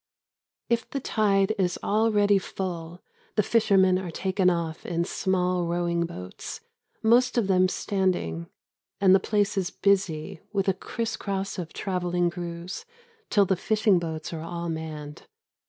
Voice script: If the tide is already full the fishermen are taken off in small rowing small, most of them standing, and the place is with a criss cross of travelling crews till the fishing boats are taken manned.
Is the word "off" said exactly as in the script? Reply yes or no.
yes